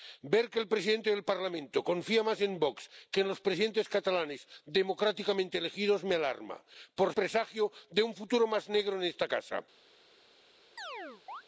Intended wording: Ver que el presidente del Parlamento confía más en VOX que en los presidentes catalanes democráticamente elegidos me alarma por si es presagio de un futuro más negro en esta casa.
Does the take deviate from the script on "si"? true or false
true